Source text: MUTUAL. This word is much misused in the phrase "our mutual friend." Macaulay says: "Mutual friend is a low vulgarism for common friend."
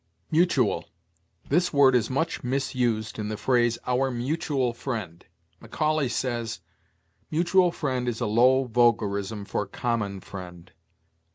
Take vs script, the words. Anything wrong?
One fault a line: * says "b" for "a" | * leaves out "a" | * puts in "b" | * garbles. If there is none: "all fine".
all fine